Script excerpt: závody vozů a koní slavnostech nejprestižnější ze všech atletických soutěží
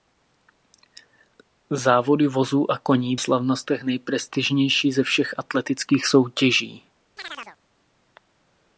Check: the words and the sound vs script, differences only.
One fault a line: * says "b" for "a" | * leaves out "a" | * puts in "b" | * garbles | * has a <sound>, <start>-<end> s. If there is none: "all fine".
* has a chirp, 7.2-7.6 s